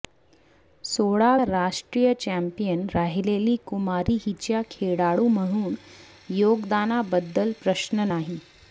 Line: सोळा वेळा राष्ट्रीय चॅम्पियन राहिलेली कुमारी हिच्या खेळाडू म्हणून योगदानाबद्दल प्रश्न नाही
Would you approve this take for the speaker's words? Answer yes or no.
no